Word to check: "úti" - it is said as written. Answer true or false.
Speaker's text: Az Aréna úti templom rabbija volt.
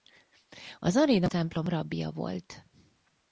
false